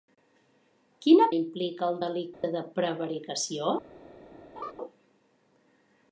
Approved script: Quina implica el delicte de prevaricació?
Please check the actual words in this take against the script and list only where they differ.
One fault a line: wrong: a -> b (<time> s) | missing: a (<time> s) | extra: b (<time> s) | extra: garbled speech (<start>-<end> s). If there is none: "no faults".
no faults